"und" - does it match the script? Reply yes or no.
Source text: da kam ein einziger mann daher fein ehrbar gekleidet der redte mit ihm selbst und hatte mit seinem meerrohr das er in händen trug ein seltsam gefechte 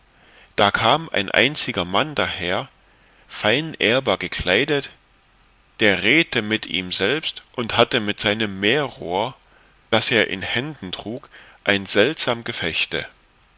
yes